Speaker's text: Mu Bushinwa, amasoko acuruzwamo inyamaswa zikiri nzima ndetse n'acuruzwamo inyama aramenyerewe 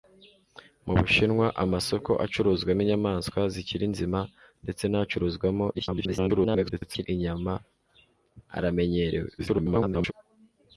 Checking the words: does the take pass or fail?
fail